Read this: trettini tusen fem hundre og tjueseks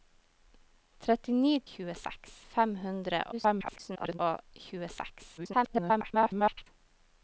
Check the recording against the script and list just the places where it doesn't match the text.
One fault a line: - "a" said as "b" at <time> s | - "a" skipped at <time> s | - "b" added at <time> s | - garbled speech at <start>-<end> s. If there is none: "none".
- "tusen" said as "tjueseks" at 1.7 s
- garbled speech at 3.3-4.2 s
- garbled speech at 5.4-6.7 s